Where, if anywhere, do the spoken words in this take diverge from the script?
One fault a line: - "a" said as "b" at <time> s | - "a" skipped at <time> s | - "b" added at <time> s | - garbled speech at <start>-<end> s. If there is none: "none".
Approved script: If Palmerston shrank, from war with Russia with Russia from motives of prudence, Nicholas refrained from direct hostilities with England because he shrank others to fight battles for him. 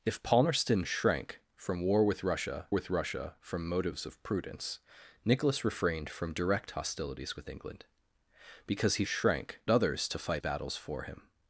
none